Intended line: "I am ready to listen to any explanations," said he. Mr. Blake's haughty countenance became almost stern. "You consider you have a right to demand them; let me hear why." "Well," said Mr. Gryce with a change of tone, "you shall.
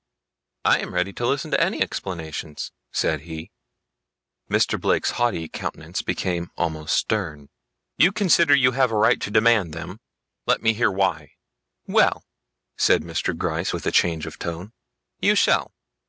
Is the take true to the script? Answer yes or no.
yes